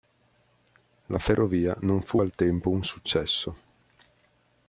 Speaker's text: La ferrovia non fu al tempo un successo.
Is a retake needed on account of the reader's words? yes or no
no